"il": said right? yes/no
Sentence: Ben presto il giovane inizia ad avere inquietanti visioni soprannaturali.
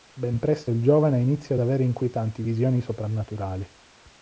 yes